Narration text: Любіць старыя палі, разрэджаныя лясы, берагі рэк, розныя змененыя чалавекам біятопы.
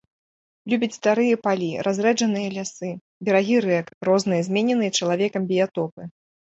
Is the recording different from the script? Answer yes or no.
no